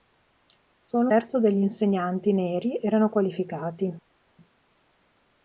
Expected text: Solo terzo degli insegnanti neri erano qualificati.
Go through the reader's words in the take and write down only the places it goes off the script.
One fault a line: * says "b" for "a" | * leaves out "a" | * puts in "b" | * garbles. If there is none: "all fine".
all fine